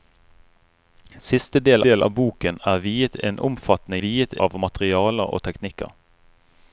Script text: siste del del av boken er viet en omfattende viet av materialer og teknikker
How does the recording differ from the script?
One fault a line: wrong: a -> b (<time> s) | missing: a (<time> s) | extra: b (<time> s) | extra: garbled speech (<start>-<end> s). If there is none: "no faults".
no faults